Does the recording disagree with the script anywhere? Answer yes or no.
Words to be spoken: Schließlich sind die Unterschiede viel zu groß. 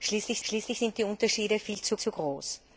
yes